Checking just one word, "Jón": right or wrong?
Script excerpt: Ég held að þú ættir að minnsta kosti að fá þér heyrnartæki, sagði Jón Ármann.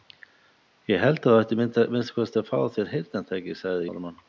wrong